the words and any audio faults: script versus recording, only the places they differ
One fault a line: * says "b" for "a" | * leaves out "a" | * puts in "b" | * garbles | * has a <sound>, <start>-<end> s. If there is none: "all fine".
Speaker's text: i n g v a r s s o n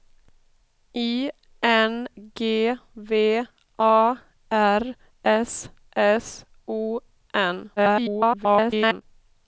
* garbles